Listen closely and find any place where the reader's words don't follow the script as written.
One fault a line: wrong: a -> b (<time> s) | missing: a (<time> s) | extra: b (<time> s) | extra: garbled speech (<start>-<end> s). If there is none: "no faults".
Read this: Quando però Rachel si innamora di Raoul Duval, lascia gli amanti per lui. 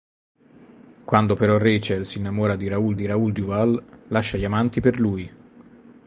extra: di Raoul (2.9 s)